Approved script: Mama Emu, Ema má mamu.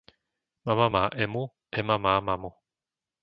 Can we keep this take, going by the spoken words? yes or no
no